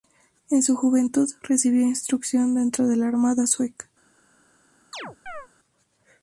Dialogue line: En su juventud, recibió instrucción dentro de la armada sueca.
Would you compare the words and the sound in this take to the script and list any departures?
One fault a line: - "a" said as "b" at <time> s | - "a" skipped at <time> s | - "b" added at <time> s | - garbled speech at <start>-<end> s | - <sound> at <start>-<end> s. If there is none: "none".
- chirp at 4.9-5.5 s